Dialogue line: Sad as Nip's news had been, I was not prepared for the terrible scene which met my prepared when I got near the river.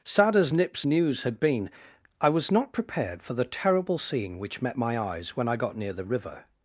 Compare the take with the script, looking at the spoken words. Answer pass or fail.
fail